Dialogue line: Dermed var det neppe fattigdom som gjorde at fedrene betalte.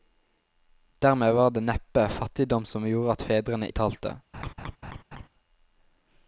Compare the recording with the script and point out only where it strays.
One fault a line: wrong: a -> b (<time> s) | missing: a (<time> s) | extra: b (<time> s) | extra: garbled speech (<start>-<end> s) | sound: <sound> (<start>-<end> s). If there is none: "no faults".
sound: laugh (4.3-5.3 s)